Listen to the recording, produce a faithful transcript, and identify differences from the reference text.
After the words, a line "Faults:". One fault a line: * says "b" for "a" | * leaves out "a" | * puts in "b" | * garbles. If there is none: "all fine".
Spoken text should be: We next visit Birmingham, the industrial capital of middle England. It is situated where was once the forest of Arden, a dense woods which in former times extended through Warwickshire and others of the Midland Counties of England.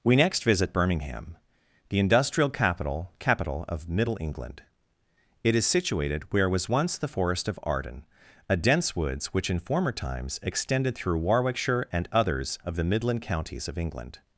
We next visit Birmingham, the industrial capital capital of middle England. It is situated where was once the forest of Arden, a dense woods which in former times extended through Warwickshire and others of the Midland Counties of England.
Faults:
* puts in "capital"